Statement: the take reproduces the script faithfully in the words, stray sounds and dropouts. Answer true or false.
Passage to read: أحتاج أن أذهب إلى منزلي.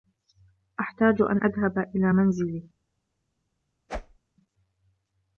false